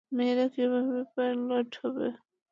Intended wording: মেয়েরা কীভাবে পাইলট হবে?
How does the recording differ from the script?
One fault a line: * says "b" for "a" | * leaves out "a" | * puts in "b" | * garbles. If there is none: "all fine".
all fine